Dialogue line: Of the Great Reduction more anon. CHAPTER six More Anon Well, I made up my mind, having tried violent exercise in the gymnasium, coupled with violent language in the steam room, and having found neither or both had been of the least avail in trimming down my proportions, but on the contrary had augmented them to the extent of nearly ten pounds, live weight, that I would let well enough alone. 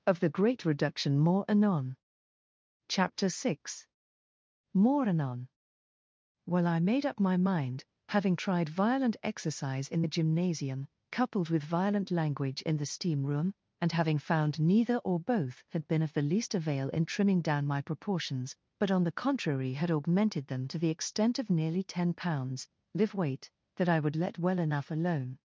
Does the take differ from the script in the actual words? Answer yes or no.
no